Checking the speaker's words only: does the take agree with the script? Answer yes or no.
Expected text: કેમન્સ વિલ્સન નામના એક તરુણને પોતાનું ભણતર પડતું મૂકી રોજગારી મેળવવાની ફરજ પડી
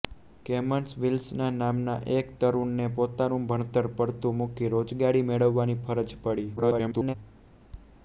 no